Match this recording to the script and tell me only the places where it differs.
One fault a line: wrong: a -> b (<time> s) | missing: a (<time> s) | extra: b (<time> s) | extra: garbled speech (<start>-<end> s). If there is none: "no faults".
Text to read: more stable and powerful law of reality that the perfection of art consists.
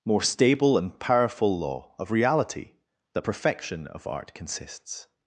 missing: the (3.3 s)